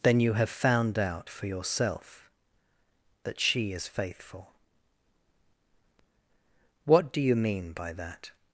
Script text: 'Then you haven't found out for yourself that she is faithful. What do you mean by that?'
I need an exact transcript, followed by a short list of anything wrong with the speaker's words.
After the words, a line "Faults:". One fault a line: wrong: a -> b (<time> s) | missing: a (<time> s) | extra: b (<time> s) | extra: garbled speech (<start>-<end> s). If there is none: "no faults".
'Then you have found out for yourself that she is faithful. What do you mean by that?'
Faults:
wrong: haven't -> have (0.3 s)